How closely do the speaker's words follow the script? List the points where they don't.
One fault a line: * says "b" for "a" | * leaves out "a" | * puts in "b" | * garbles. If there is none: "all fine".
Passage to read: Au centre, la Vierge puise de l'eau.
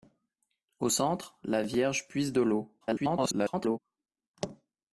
* garbles